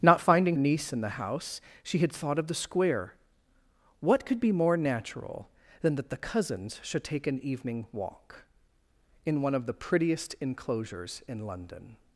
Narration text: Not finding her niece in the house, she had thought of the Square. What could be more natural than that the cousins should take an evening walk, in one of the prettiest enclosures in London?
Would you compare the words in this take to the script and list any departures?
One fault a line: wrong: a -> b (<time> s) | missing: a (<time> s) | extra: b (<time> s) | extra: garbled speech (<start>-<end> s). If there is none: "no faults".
missing: her (0.6 s)